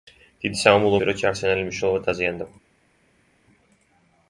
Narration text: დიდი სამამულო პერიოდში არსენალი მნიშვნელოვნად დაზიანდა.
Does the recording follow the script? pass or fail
pass